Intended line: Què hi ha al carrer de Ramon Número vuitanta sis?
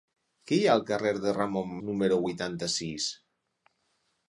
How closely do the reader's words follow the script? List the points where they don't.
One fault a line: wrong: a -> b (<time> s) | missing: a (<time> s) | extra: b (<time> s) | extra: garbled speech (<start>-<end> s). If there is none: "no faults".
no faults